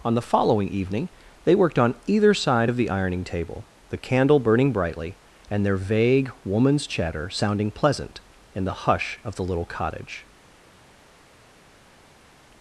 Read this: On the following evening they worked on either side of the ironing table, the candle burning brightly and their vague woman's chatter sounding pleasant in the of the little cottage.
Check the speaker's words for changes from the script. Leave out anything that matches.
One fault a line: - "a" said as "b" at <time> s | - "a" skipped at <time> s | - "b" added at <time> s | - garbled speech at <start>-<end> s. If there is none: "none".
- "hush" added at 8.7 s